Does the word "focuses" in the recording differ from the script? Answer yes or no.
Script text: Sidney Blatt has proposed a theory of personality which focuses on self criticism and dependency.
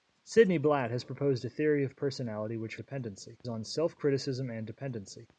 yes